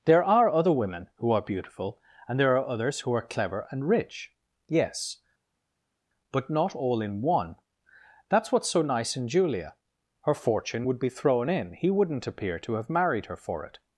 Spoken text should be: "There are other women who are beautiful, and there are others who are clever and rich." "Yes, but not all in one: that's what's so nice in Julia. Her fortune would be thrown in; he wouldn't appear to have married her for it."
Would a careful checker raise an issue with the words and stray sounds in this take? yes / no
no